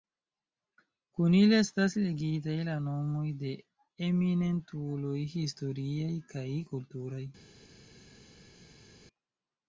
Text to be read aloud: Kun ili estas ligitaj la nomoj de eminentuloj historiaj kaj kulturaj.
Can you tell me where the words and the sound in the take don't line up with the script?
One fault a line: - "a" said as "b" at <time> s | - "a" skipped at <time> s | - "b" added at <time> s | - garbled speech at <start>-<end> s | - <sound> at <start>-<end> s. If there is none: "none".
none